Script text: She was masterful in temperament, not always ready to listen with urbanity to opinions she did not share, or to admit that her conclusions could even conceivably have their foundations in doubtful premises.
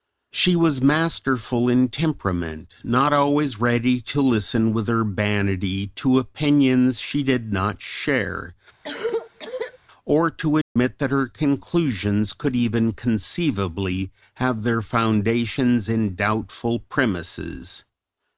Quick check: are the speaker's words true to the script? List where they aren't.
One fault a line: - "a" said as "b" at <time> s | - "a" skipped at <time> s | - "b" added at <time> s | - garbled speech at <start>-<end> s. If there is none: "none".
none